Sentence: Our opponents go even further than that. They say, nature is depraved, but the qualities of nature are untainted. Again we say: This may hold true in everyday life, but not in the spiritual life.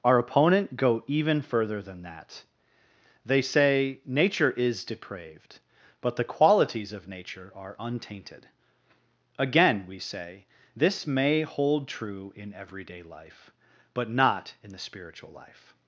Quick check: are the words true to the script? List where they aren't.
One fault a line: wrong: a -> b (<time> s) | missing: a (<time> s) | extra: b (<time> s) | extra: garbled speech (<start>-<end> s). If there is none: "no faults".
wrong: opponents -> opponent (0.2 s)